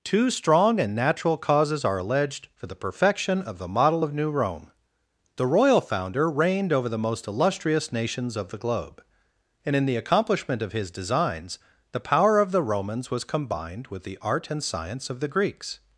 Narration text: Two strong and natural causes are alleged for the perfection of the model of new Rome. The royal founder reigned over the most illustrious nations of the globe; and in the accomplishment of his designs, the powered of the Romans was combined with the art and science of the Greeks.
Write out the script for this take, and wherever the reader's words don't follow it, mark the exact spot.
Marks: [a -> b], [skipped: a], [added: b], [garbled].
Two strong and natural causes are alleged for the perfection of the model of new Rome. The royal founder reigned over the most illustrious nations of the globe; and in the accomplishment of his designs, the [powered -> power] of the Romans was combined with the art and science of the Greeks.